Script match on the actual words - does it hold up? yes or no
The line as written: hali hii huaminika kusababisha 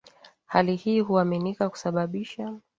yes